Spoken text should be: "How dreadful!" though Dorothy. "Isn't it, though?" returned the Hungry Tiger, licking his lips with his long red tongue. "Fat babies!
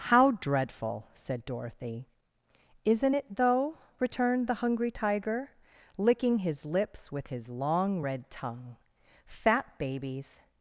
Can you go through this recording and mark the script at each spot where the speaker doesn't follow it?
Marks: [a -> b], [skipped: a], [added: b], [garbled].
"How dreadful!" [though -> said] Dorothy. "Isn't it, though?" returned the Hungry Tiger, licking his lips with his long red tongue. "Fat babies!